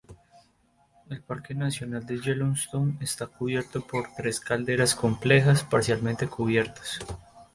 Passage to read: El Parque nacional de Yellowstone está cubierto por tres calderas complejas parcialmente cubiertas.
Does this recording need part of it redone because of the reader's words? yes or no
no